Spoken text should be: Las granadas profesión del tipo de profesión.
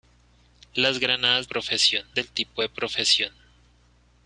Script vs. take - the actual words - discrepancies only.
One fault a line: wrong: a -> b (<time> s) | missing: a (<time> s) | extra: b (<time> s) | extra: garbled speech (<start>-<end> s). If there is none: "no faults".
no faults